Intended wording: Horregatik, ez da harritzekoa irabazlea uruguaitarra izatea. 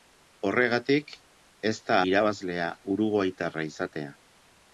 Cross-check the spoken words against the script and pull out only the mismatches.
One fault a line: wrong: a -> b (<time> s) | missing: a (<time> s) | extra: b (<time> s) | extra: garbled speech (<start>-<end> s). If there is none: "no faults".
missing: harritzekoa (2.0 s)